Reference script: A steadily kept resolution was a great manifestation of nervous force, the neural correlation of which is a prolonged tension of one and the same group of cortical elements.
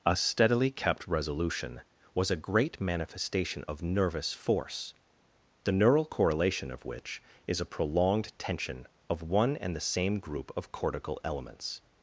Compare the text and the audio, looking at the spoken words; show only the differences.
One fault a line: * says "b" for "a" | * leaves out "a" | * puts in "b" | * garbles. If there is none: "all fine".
all fine